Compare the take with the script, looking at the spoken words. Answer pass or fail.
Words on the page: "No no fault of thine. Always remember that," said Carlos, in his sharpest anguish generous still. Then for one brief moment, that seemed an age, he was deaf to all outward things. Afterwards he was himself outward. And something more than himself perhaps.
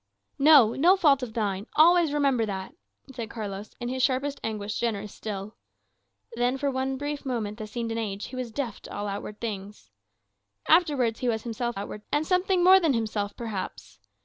pass